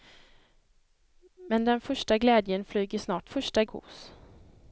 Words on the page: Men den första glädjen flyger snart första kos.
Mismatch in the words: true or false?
false